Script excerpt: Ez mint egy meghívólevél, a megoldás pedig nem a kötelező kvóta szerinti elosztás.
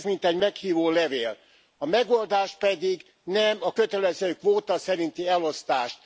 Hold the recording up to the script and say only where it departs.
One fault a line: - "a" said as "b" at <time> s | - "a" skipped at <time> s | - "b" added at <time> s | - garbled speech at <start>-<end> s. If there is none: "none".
none